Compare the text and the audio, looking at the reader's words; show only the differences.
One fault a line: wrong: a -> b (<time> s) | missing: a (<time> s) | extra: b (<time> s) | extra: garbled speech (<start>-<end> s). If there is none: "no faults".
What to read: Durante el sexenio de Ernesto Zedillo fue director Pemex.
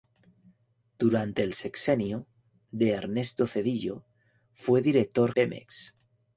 no faults